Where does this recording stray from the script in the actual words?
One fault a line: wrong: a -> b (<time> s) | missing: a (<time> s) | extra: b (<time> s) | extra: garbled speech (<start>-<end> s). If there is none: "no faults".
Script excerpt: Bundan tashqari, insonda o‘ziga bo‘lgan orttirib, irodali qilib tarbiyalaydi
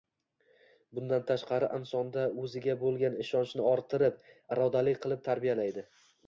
extra: ishonchni (3.2 s)